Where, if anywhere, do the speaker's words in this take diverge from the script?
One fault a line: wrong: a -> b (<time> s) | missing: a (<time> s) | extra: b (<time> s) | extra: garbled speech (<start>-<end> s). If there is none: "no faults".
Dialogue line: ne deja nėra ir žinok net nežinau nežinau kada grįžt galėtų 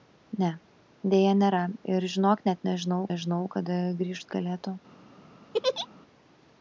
no faults